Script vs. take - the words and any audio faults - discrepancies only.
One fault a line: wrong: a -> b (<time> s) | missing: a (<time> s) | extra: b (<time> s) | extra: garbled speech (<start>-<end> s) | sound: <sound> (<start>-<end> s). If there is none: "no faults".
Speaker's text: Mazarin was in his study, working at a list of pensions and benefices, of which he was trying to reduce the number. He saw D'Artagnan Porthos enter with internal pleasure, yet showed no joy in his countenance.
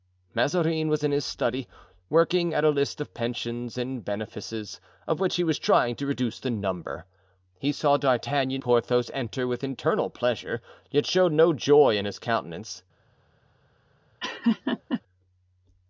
sound: laugh (14.2-15.0 s)